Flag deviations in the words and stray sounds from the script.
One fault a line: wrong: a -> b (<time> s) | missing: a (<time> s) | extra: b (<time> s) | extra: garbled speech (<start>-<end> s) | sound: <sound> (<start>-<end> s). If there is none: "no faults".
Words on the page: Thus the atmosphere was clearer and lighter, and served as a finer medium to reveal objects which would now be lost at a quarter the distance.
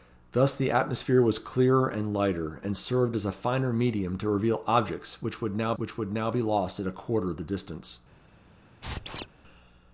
extra: which would now (5.8 s)
sound: squeak (8.8-9.3 s)